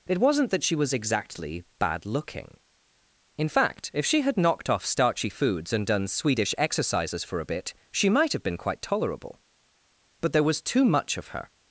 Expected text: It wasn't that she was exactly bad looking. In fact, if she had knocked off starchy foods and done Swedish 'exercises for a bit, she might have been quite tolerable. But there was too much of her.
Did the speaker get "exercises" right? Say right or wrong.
right